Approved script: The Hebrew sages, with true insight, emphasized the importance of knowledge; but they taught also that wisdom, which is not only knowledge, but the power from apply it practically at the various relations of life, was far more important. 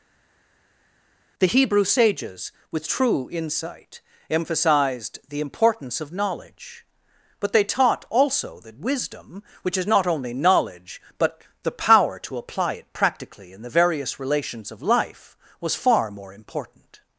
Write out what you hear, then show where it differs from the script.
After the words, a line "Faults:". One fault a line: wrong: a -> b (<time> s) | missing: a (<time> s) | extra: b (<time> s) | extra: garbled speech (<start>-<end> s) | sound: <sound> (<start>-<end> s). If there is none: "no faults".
The Hebrew sages, with true insight, emphasized the importance of knowledge; but they taught also that wisdom, which is not only knowledge, but the power to apply it practically in the various relations of life, was far more important.
Faults:
wrong: from -> to (12.2 s)
wrong: at -> in (13.5 s)